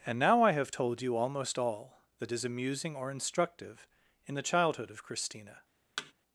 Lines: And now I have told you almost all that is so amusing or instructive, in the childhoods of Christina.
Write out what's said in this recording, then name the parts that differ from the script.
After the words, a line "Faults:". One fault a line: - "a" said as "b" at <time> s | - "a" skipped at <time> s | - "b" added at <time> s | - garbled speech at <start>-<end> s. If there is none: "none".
And now I have told you almost all that is amusing or instructive, in the childhood of Christina.
Faults:
- "so" skipped at 2.4 s
- "childhoods" said as "childhood" at 4.4 s